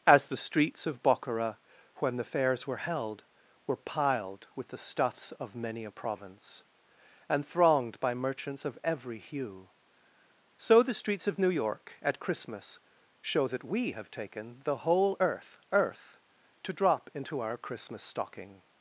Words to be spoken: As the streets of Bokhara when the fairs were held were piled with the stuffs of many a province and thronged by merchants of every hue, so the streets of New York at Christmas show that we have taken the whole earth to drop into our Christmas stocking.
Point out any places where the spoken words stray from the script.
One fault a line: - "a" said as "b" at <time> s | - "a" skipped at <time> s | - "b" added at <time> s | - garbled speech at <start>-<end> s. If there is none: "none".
- "earth" added at 15.7 s